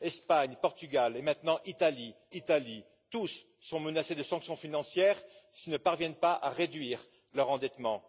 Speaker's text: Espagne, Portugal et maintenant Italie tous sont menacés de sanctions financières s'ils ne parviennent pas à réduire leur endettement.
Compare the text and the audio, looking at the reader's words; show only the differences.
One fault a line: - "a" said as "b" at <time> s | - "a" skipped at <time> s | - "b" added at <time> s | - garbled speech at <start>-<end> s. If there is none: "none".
- "Italie" added at 2.3 s